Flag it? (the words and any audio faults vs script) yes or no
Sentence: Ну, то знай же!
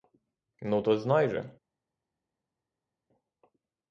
no